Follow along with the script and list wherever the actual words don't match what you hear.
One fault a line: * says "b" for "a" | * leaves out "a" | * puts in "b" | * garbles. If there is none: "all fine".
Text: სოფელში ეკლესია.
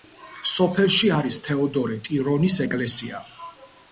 * puts in "არის თეოდორე ტირონის"